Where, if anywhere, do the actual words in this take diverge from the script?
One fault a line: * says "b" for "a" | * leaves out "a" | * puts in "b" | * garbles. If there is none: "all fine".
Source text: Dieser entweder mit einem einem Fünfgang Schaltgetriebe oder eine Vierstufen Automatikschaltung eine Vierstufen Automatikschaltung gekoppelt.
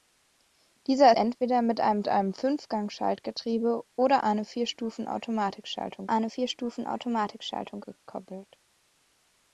all fine